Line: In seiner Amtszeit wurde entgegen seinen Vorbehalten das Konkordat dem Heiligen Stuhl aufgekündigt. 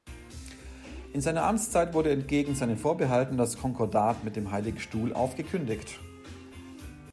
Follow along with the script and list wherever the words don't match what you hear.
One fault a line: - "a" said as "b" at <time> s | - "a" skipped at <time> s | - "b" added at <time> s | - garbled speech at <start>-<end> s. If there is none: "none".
- "mit" added at 4.2 s